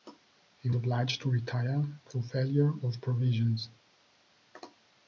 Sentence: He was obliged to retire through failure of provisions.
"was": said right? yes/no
no